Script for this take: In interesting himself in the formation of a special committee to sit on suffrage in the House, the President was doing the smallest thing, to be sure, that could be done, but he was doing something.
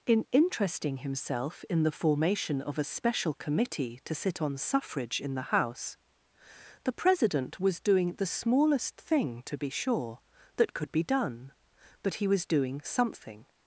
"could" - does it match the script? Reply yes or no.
yes